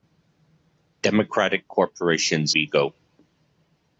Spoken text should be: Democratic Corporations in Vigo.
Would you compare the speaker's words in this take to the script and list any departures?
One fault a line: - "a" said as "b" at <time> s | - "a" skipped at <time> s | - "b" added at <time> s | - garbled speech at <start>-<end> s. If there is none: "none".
- "in" skipped at 2.5 s